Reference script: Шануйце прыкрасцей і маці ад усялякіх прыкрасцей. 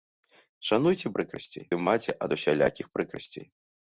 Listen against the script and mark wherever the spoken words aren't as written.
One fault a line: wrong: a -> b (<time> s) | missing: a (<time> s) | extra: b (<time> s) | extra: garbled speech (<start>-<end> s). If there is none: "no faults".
no faults